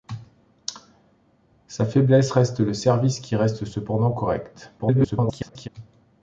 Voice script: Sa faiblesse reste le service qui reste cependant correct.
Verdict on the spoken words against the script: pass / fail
fail